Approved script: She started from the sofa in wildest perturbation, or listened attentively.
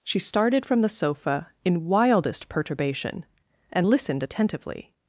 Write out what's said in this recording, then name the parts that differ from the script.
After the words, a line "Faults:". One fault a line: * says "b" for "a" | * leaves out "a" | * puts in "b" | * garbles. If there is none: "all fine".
She started from the sofa in wildest perturbation, and listened attentively.
Faults:
* says "and" for "or"